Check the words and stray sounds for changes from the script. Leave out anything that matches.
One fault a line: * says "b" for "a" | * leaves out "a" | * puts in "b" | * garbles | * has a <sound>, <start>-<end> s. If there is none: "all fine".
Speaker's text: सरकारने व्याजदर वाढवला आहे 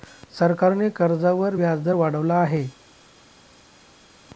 * puts in "कर्जावर"